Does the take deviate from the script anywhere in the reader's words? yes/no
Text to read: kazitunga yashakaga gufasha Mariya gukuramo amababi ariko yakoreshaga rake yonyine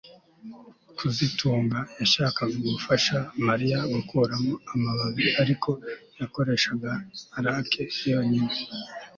no